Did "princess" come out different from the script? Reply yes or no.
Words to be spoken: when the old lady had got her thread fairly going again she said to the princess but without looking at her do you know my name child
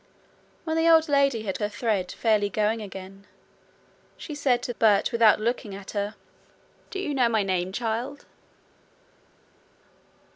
yes